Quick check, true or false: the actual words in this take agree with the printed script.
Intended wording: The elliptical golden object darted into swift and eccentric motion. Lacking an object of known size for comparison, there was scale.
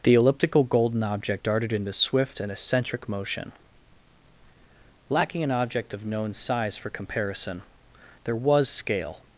true